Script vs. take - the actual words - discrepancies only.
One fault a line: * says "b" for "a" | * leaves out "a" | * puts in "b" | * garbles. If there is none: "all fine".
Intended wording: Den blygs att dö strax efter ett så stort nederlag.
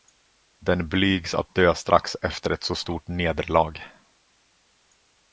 all fine